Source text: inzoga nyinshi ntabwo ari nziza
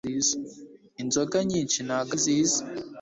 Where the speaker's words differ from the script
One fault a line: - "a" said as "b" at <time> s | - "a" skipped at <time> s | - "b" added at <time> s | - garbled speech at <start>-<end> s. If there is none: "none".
- "ari" skipped at 2.1 s